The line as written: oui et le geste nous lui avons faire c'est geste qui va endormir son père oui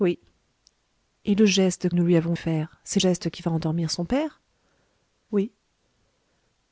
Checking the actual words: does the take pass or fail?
pass